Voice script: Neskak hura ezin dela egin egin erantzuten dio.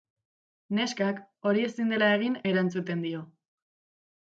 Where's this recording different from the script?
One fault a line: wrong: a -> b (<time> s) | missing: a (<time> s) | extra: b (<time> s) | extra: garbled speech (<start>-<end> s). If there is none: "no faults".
wrong: hura -> hori (1.5 s)
missing: egin (2.4 s)